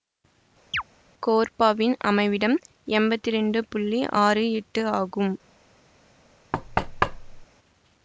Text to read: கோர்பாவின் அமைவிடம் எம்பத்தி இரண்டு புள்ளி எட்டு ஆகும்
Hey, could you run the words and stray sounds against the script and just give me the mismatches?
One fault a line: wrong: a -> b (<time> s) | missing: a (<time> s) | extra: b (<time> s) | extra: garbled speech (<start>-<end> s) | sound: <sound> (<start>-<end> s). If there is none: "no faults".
sound: chirp (0.7-0.8 s)
extra: ஆறு (4.2 s)
sound: thud (6.5-7.5 s)